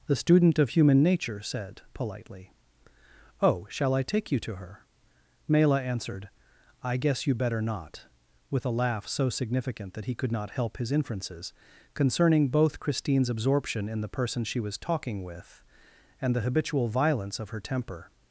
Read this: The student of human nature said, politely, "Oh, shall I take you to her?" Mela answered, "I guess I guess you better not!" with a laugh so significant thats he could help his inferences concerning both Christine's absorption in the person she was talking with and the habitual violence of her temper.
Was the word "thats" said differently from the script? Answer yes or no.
yes